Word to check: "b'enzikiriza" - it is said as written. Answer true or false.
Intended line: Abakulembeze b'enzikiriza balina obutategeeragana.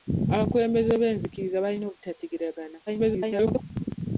true